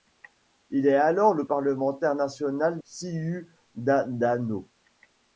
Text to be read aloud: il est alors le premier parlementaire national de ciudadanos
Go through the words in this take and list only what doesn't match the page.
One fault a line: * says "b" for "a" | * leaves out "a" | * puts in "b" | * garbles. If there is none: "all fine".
* leaves out "premier"
* leaves out "de"